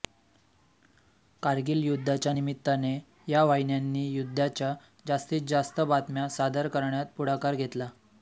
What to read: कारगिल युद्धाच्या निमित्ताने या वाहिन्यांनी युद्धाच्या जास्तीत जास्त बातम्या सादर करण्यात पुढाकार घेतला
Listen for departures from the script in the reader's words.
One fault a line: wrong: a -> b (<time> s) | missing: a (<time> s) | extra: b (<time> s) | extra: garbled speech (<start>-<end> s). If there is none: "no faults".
no faults